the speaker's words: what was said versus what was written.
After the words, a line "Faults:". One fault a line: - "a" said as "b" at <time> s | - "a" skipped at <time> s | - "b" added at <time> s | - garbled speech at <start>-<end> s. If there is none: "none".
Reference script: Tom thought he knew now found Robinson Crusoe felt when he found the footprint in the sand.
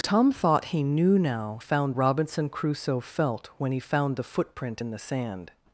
Tom thought he knew now found Robinson Crusoe felt when he found the footprint in the sand.
Faults:
none